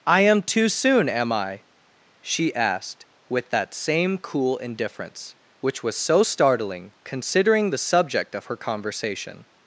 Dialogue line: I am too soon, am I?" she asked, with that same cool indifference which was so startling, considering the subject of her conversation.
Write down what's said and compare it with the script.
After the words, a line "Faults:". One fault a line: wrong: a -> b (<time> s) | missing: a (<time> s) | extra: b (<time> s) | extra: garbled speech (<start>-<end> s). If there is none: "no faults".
I am too soon, am I?" she asked, with that same cool indifference which was so startling, considering the subject of her conversation.
Faults:
no faults